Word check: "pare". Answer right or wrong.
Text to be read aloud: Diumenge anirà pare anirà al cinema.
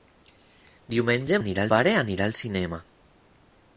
right